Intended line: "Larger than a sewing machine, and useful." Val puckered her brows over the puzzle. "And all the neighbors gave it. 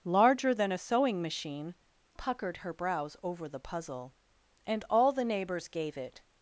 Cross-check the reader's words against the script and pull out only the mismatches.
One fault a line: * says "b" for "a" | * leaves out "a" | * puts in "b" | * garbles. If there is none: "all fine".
* leaves out "and useful Val"